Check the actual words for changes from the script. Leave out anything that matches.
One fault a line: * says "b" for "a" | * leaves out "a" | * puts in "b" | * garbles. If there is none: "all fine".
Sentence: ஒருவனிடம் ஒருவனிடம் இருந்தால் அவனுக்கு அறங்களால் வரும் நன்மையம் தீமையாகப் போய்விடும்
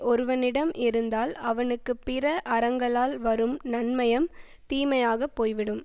* leaves out "ஒருவனிடம்"
* puts in "பிற"